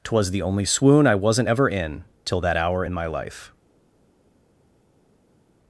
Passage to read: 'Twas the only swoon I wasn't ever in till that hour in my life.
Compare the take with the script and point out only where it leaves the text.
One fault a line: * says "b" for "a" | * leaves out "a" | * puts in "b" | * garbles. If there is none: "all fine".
all fine